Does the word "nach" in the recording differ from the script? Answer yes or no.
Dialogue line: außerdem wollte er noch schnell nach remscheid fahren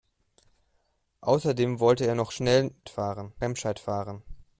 yes